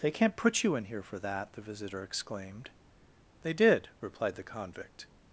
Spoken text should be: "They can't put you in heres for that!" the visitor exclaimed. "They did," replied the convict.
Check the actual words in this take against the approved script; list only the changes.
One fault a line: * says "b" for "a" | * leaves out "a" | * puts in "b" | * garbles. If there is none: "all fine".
* says "here" for "heres"